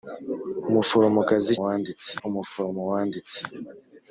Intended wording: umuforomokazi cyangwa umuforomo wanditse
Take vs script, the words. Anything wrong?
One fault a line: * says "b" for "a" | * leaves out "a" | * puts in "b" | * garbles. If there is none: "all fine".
* says "wanditse" for "cyangwa"